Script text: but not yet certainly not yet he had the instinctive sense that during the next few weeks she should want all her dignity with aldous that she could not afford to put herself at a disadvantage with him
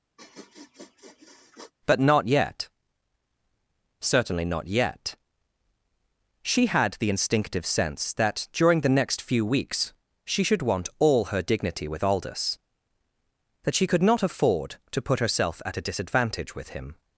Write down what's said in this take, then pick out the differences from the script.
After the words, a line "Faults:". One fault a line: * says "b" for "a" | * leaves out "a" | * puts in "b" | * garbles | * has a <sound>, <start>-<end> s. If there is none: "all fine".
but not yet certainly not yet she had the instinctive sense that during the next few weeks she should want all her dignity with aldous that she could not afford to put herself at a disadvantage with him
Faults:
* has a sniff, 0.2-1.7 s
* says "she" for "he"